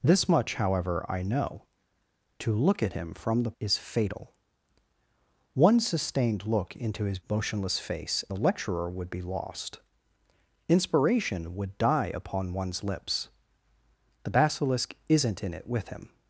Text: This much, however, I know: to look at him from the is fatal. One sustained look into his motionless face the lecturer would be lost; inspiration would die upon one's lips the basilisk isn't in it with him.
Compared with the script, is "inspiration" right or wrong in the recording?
right